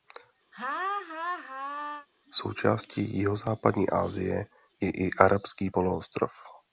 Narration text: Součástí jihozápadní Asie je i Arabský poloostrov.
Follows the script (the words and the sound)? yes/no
no